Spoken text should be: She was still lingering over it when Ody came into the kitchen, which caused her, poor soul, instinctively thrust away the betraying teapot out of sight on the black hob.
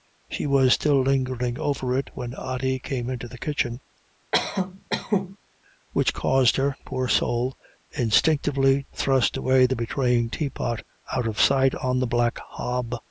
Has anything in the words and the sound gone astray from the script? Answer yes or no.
yes